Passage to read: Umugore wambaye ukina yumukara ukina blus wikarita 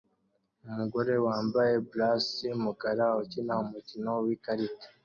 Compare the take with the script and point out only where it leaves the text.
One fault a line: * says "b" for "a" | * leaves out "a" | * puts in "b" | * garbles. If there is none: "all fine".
* says "blus" for "ukina"
* says "umukino" for "blus"